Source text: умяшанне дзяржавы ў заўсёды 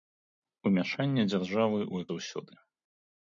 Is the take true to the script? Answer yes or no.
yes